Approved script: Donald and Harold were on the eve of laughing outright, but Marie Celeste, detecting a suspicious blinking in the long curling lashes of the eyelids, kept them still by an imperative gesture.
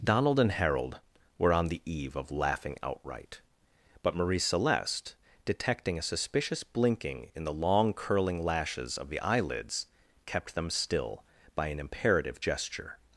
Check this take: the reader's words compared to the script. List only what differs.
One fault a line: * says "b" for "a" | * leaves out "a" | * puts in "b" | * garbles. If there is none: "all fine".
all fine